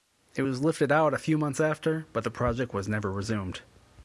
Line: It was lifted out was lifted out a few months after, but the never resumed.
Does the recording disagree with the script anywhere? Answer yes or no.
yes